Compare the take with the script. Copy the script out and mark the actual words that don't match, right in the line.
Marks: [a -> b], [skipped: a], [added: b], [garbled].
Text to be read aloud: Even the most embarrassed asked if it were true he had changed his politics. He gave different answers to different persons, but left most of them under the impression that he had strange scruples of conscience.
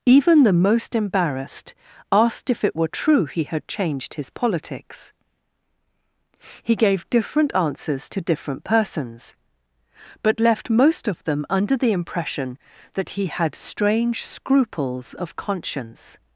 Even the most embarrassed asked if it were true he had changed his politics. He gave different answers to different persons, but left most of them under the impression that he had strange scruples of conscience.